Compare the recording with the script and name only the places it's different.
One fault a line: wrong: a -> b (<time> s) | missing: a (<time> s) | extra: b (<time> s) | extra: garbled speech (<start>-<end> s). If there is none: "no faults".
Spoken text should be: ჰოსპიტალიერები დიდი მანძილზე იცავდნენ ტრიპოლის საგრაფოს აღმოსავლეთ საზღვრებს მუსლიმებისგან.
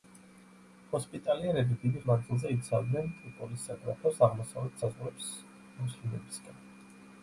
no faults